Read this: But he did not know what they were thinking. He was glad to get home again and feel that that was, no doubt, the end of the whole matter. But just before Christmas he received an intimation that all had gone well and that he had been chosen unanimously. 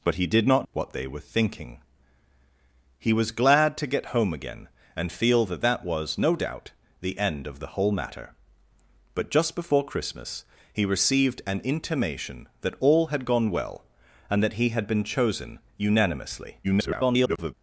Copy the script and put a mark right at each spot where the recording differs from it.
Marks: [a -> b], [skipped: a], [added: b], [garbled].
But he did not [skipped: know] what they were thinking. He was glad to get home again and feel that that was, no doubt, the end of the whole matter. But just before Christmas he received an intimation that all had gone well and that he had been chosen unanimously. [garbled]